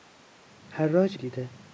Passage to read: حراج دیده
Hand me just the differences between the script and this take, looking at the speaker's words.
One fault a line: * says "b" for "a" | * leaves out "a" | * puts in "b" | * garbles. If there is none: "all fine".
all fine